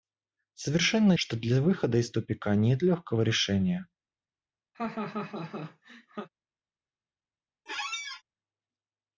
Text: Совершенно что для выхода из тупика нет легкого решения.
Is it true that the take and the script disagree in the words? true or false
false